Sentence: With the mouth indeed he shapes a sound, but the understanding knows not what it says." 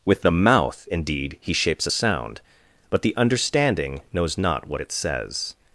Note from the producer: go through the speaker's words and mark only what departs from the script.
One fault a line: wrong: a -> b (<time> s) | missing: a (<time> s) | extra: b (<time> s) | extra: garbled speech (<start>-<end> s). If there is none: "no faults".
no faults